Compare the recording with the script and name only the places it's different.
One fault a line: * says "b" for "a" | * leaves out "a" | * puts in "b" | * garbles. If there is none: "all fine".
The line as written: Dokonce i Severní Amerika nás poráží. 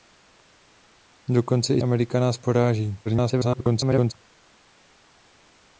* leaves out "Severní"
* garbles